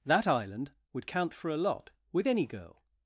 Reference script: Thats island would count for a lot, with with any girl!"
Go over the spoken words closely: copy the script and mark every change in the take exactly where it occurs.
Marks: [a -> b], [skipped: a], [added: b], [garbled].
[Thats -> That] island would count for a lot, with [skipped: with] any girl!"